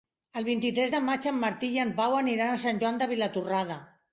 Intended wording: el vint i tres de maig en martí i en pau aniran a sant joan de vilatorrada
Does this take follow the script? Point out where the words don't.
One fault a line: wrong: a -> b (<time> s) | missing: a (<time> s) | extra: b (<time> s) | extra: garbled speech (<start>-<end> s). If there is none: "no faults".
no faults